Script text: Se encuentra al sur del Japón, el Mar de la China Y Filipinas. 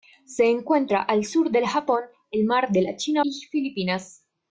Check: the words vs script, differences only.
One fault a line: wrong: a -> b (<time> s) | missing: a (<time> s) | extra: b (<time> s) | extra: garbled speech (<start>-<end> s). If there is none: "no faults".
no faults